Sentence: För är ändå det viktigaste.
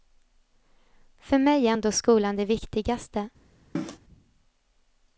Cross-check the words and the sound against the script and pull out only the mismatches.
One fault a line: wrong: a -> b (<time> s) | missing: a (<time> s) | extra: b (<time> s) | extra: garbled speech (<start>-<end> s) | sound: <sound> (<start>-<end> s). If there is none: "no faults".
extra: mig (1.4 s)
extra: skolan (1.9 s)
sound: cough (3.7-4.0 s)